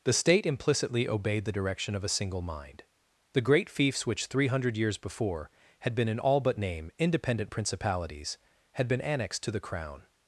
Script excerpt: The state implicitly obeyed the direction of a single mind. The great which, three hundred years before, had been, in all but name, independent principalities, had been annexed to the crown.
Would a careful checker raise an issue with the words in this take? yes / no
yes